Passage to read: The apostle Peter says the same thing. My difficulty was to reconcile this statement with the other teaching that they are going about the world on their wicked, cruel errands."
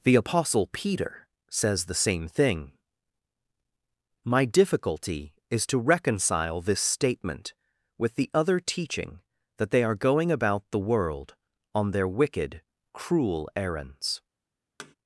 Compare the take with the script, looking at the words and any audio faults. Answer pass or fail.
fail